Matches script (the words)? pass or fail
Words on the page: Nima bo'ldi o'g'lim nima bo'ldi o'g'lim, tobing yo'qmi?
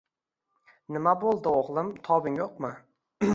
fail